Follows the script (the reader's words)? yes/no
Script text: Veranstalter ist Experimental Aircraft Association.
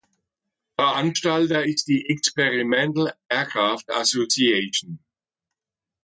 no